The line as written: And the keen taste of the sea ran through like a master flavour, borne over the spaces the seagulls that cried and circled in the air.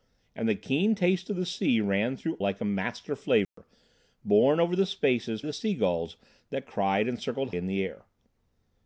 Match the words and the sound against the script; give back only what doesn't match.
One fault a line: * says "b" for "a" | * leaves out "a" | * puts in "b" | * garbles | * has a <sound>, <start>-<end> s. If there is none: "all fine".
* has a dropout, 3.4-3.6 s